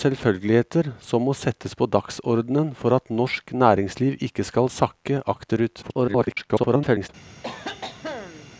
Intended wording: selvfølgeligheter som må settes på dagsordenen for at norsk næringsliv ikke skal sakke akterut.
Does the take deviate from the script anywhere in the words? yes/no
yes